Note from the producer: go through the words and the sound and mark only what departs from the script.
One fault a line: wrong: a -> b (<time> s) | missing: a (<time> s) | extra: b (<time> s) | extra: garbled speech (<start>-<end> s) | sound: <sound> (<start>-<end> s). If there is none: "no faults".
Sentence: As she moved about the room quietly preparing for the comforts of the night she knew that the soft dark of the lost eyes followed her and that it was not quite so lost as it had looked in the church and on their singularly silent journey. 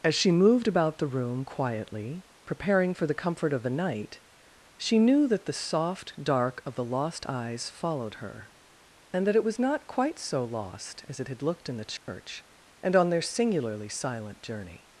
wrong: comforts -> comfort (3.1 s)
sound: dropout (12.0-12.1 s)